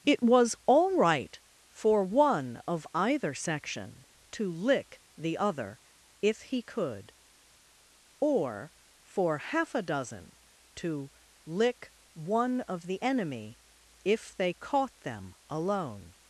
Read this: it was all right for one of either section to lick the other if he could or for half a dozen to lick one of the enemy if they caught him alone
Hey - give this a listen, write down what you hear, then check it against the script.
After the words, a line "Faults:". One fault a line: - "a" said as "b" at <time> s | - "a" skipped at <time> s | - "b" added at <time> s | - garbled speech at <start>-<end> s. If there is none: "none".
it was all right for one of either section to lick the other if he could or for half a dozen to lick one of the enemy if they caught them alone
Faults:
- "him" said as "them" at 15.0 s